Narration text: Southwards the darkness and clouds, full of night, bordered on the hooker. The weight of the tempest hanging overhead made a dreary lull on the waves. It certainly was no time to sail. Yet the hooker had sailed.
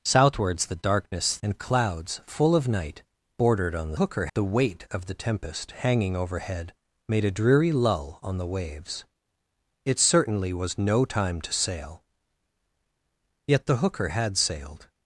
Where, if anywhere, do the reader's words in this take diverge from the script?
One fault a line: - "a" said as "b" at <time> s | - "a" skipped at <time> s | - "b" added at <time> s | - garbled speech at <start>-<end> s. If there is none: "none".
none